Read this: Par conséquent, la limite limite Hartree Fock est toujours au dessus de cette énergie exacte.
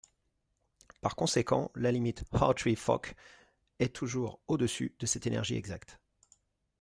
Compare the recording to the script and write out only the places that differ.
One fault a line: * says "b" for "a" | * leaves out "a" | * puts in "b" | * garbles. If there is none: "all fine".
* leaves out "limite"